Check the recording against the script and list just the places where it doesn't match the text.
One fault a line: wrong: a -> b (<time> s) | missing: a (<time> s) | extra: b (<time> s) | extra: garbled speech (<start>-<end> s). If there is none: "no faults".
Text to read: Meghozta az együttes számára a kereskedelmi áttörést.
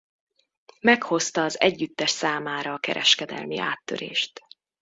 no faults